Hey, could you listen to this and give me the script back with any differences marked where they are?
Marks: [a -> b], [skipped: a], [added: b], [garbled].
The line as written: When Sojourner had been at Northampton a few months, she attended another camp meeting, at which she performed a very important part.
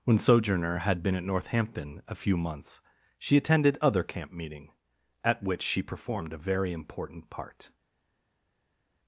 When Sojourner had been at Northampton a few months, she attended [another -> other] camp meeting, at which she performed a very important part.